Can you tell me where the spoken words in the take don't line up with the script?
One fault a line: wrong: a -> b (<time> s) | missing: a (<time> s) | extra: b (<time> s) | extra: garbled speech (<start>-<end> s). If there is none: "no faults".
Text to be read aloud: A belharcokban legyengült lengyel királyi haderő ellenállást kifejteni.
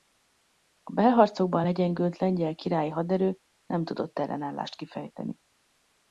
extra: nem tudott (3.6 s)